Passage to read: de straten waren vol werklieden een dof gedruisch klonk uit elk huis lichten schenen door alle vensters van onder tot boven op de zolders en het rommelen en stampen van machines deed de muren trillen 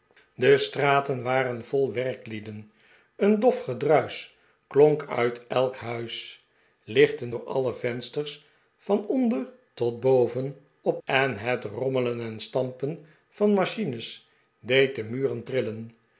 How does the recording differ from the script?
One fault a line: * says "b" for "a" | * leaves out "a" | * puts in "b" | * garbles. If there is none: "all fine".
* leaves out "schenen"
* leaves out "de zolders"